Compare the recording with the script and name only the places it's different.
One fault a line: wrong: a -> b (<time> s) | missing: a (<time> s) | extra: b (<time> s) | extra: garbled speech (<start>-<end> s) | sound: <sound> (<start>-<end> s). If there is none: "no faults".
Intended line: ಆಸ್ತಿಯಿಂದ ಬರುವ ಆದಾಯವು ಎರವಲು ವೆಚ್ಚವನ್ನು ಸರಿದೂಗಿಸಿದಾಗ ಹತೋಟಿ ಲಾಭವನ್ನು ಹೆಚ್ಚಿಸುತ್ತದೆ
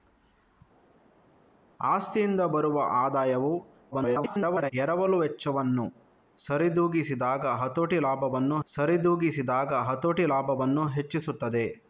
extra: garbled speech (3.9-4.7 s)
extra: ಸರಿದೂಗಿಸಿದಾಗ ಹತೋಟಿ ಲಾಭವನ್ನು (8.7 s)